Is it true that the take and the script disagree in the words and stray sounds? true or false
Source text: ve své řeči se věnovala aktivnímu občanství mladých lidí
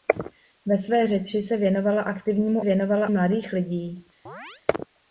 true